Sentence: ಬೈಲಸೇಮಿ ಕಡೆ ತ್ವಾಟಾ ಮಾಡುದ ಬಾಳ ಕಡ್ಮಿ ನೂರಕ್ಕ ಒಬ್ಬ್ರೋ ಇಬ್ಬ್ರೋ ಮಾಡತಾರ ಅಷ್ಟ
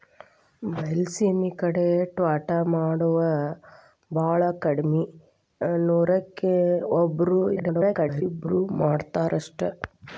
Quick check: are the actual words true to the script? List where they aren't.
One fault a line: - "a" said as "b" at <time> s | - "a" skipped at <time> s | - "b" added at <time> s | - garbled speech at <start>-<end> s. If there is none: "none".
- garbled speech at 7.6-8.2 s